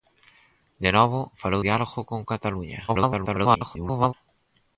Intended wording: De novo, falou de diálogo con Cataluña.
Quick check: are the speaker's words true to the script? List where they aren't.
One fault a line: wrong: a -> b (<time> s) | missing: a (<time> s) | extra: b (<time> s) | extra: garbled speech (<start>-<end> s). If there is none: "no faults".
missing: de (1.6 s)
extra: garbled speech (2.9-4.1 s)